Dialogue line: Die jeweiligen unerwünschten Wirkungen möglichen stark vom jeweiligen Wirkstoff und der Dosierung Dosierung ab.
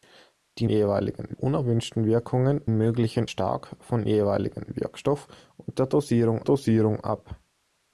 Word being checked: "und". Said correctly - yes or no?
yes